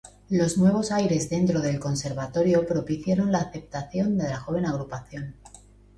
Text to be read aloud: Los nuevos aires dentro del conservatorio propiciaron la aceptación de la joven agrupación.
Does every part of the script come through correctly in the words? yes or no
yes